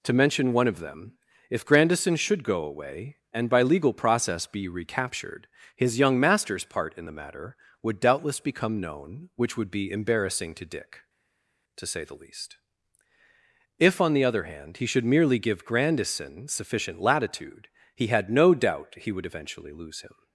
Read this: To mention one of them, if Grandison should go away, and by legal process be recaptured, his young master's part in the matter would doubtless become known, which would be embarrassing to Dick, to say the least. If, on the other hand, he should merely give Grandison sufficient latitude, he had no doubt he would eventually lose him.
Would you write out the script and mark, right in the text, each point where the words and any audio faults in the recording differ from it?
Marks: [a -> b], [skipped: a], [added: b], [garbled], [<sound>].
To mention one of them, if Grandison should go away, and by legal process be recaptured, his young master's part in the matter would doubtless become known, which would be embarrassing to Dick, to say the least. If, on the other hand, he should merely give Grandison sufficient latitude, he had no doubt he would eventually lose him.